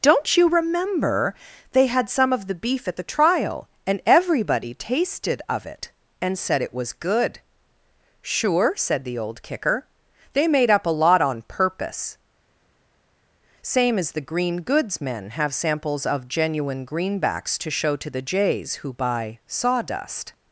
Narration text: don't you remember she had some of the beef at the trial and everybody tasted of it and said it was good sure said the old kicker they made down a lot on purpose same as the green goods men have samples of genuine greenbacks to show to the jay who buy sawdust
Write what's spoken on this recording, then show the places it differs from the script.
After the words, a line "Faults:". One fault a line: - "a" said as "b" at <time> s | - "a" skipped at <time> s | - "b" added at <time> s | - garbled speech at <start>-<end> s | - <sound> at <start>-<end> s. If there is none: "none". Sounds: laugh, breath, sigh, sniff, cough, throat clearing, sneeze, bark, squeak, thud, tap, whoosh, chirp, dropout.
don't you remember they had some of the beef at the trial and everybody tasted of it and said it was good sure said the old kicker they made up a lot on purpose same as the green goods men have samples of genuine greenbacks to show to the jays who buy sawdust
Faults:
- "she" said as "they" at 1.7 s
- "down" said as "up" at 10.7 s
- "jay" said as "jays" at 18.2 s